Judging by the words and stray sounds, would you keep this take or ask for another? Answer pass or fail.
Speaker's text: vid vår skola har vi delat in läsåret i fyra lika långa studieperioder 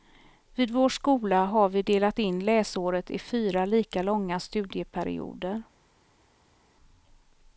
pass